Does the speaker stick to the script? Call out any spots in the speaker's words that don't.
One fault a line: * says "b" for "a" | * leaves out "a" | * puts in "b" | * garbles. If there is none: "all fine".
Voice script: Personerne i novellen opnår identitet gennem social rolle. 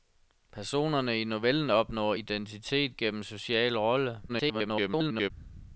* garbles